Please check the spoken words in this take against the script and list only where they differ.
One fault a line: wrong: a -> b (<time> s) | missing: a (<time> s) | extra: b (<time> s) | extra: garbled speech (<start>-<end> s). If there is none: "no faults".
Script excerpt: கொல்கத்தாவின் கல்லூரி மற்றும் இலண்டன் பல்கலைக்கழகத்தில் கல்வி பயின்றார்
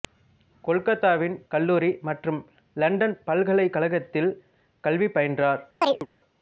no faults